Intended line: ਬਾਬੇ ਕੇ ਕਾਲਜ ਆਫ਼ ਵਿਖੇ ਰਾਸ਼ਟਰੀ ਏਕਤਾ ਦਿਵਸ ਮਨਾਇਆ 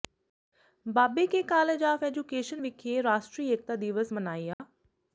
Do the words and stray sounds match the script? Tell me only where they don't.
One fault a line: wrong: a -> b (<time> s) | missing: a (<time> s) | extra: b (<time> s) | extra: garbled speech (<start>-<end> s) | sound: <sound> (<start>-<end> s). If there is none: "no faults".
extra: ਐਜੂਕੇਸ਼ਨ (2.0 s)
sound: dropout (4.5-4.6 s)